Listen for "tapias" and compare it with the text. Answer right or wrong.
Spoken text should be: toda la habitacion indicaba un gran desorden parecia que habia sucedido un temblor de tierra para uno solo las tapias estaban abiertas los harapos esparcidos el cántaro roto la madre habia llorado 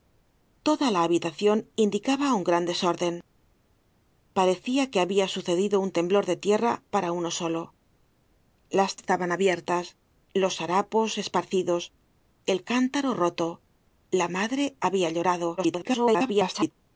wrong